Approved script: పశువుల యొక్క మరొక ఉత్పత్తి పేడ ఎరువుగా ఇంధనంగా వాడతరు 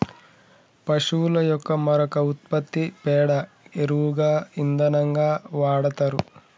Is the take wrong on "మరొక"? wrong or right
right